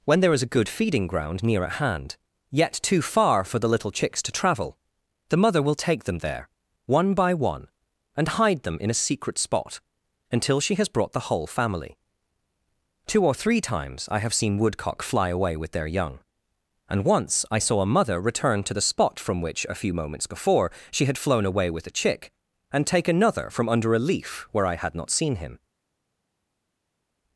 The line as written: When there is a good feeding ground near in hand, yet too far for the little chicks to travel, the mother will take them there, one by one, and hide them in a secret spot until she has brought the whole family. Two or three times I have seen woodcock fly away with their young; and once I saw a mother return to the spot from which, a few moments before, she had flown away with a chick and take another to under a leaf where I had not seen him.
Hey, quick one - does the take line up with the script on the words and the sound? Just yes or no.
no